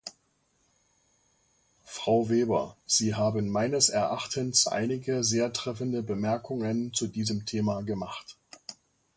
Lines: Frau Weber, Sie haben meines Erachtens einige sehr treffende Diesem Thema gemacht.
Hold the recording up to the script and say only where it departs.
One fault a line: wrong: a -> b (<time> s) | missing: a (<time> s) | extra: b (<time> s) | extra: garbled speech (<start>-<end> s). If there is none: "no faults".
extra: Bemerkungen zu (6.0 s)